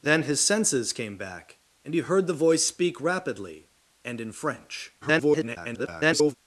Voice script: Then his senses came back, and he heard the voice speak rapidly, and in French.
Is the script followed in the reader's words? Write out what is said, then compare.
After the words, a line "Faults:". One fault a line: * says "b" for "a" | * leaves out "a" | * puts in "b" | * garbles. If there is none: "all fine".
Then his senses came back, and he heard the voice speak rapidly, and in French. [garbled]
Faults:
* garbles